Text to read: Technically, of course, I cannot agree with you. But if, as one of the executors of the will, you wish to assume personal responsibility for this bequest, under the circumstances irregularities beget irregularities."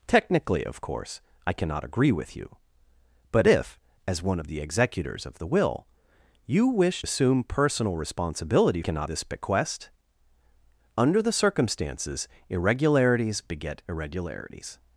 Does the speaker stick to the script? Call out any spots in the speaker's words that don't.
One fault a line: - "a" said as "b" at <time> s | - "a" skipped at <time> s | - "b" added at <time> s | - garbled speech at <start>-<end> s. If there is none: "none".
- "to" skipped at 7.0 s
- "for" said as "cannot" at 8.8 s